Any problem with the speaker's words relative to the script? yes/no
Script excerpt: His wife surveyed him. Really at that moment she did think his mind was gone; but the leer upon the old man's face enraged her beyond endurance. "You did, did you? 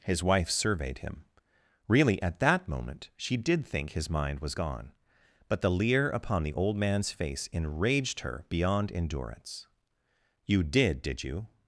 no